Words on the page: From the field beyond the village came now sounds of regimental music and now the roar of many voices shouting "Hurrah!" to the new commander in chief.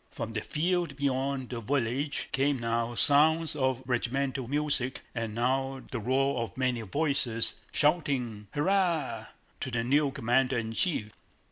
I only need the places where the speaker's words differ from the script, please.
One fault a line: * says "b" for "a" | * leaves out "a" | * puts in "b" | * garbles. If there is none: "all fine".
all fine